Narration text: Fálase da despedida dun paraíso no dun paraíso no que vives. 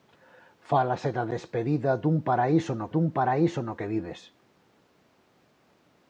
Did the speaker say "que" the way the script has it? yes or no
yes